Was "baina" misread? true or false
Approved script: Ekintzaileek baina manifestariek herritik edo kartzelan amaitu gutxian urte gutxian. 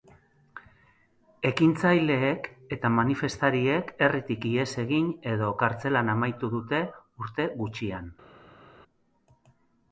true